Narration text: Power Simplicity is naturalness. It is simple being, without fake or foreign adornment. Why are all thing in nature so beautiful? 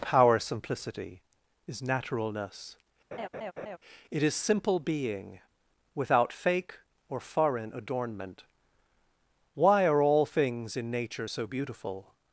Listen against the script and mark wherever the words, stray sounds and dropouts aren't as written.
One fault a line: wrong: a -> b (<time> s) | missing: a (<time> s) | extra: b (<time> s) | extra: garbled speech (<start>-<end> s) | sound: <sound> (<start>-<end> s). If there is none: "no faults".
sound: laugh (3.1-3.8 s)
wrong: thing -> things (10.2 s)